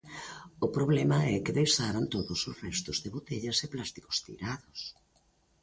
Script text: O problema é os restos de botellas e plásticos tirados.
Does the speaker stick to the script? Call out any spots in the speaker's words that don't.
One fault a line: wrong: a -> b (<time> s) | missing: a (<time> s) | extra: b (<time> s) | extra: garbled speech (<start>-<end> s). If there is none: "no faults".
extra: que deixaron todos (1.4 s)